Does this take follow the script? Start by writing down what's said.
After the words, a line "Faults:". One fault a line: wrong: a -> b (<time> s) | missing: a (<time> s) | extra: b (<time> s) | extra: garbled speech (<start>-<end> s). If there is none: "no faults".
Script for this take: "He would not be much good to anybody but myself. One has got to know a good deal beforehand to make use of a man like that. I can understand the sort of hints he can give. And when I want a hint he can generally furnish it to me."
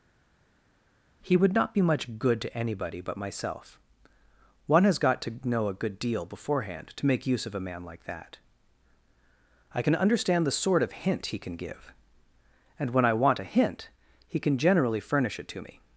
"He would not be much good to anybody but myself. One has got to know a good deal beforehand to make use of a man like that. I can understand the sort of hint he can give. And when I want a hint he can generally furnish it to me."
Faults:
wrong: hints -> hint (10.9 s)